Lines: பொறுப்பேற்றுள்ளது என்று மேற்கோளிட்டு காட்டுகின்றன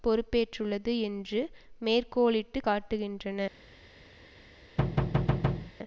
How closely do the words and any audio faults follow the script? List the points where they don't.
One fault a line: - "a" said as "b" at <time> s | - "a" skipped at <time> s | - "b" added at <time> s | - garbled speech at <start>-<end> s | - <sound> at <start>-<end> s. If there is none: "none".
- thud at 4.8-5.7 s